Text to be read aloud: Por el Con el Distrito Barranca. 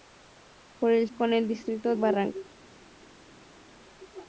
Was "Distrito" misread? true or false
false